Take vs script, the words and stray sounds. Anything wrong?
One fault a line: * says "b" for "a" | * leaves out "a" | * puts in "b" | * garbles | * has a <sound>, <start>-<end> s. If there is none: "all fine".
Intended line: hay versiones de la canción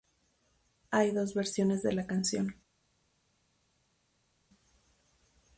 * puts in "dos"